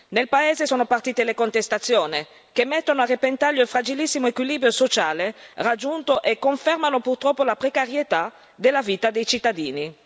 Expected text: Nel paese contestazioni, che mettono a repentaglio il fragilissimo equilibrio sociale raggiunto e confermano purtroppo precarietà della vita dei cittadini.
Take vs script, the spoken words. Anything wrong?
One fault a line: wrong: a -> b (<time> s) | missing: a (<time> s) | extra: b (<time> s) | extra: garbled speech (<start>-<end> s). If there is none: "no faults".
extra: sono partite le (0.6 s)
extra: la (7.4 s)